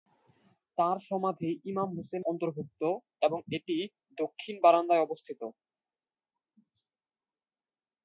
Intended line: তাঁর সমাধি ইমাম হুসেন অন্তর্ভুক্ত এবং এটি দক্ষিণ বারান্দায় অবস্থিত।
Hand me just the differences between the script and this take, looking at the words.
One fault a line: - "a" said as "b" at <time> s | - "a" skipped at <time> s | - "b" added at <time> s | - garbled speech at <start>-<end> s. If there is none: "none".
none